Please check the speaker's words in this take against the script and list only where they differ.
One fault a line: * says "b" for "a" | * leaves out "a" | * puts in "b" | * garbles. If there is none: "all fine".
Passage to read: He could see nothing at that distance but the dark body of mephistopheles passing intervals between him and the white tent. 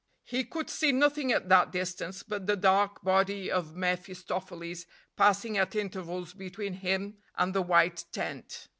* puts in "at"